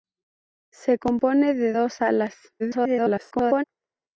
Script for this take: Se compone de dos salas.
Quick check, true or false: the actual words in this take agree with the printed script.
false